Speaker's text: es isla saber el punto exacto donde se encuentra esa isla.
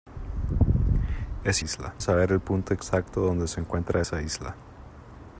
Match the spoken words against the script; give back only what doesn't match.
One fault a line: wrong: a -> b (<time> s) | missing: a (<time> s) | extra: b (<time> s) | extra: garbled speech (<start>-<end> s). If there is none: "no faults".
no faults